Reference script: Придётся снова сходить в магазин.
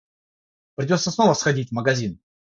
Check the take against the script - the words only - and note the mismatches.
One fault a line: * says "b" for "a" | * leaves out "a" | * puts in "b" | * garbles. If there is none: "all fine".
all fine